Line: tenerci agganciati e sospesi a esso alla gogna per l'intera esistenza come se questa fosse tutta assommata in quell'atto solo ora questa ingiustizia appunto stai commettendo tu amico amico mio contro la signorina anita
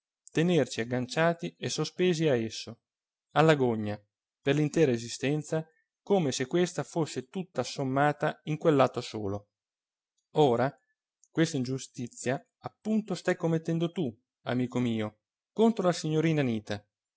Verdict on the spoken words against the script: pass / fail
fail